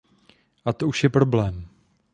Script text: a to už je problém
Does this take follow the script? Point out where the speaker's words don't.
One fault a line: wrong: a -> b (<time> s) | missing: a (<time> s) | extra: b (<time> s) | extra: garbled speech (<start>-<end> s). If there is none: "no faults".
no faults